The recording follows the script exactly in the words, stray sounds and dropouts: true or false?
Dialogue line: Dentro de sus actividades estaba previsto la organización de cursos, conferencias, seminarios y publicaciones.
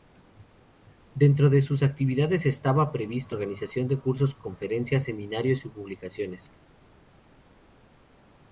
false